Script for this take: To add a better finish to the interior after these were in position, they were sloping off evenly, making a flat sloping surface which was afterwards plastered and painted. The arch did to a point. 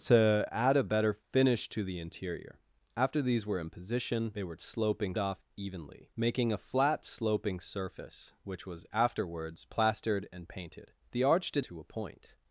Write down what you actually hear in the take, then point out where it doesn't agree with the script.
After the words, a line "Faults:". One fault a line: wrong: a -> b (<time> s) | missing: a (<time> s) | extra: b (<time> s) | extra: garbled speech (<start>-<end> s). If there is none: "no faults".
To add a better finish to the interior after these were in position, they were sloping off evenly, making a flat sloping surface which was afterwards plastered and painted. The arch did to a point.
Faults:
no faults